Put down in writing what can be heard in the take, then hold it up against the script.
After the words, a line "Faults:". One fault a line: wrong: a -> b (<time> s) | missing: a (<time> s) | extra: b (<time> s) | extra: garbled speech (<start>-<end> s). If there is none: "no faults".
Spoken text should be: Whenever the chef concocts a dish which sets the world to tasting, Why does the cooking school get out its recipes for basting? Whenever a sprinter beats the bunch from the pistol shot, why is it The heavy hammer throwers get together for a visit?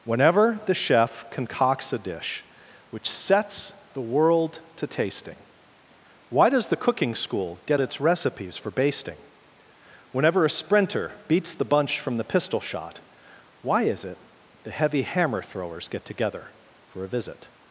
Whenever the chef concocts a dish which sets the world to tasting, Why does the cooking school get its recipes for basting? Whenever a sprinter beats the bunch from the pistol shot, why is it The heavy hammer throwers get together for a visit?
Faults:
missing: out (7.8 s)